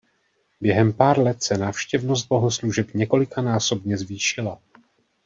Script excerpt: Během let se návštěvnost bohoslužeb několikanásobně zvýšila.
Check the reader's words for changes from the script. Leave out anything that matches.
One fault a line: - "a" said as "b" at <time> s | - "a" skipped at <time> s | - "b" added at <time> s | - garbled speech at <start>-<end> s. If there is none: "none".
- "pár" added at 0.9 s